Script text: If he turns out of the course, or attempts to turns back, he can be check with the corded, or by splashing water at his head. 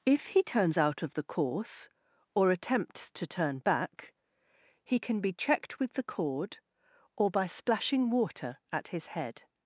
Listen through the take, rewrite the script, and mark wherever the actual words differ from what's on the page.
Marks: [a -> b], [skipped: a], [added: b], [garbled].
If he turns out of the course, or attempts to [turns -> turn] back, he can be [check -> checked] with the [corded, -> cord] or by splashing water at his head.